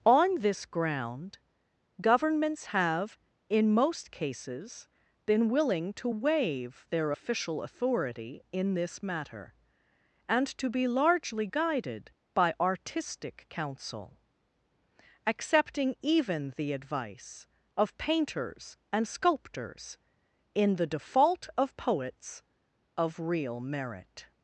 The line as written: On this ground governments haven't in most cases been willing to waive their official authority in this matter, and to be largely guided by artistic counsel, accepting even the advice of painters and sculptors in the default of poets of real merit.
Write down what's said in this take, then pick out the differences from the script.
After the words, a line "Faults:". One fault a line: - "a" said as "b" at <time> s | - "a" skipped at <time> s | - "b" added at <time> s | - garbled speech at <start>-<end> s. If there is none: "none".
On this ground governments have in most cases been willing to waive their official authority in this matter, and to be largely guided by artistic counsel, accepting even the advice of painters and sculptors in the default of poets of real merit.
Faults:
- "haven't" said as "have" at 2.7 s